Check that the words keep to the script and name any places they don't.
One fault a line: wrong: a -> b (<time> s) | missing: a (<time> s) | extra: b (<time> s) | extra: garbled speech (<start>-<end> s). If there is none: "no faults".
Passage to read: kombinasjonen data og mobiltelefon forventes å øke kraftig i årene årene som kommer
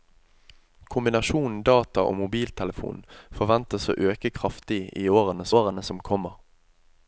no faults